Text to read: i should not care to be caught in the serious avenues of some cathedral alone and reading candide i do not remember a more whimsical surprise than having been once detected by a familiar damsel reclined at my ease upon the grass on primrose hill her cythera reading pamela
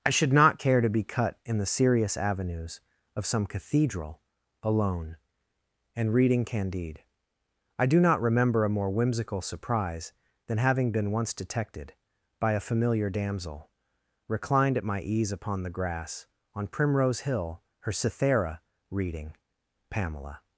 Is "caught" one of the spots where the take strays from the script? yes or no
yes